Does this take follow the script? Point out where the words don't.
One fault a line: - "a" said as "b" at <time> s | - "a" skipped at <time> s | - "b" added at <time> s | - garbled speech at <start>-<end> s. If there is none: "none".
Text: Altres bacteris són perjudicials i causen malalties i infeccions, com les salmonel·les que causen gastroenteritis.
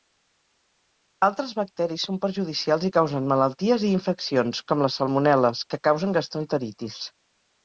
none